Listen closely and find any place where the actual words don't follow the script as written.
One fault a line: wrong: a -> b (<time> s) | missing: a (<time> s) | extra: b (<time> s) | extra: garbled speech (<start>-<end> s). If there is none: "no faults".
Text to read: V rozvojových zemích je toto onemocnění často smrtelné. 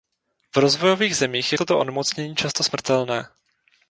no faults